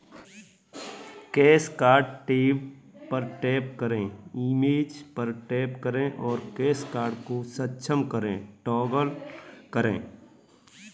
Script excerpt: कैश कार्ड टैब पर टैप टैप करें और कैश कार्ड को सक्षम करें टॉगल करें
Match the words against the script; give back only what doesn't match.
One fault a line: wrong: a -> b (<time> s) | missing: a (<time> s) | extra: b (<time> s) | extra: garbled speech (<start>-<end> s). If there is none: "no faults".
extra: करें इमेज पर (3.8 s)